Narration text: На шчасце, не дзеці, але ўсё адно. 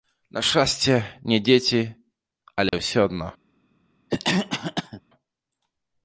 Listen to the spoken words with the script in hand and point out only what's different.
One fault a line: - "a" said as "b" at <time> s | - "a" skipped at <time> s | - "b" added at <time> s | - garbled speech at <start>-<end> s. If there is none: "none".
none